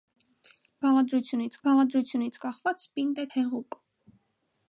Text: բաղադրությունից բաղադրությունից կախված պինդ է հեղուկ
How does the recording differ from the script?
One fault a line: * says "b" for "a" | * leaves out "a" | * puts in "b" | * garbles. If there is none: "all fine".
all fine